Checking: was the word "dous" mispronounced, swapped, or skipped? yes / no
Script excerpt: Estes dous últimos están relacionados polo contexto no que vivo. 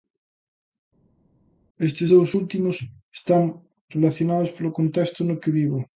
no